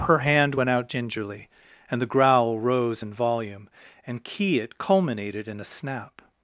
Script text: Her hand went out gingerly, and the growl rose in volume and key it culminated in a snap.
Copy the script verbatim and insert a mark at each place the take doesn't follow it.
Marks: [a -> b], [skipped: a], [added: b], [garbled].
Her hand went out gingerly, and the growl rose in volume and key it culminated in a snap.